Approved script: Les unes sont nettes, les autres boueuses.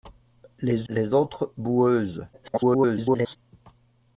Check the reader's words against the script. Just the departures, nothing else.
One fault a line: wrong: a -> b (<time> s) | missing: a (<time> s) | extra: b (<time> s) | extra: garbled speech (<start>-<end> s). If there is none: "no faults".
missing: unes sont nettes (0.9 s)
extra: garbled speech (2.3-3.4 s)